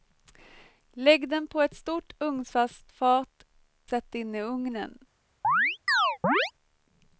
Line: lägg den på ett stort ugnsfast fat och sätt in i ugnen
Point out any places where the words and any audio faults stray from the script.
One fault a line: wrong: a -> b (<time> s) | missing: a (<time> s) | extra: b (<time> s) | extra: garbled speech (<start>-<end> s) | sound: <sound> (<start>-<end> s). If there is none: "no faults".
missing: och (3.5 s)
sound: chirp (5.4-6.5 s)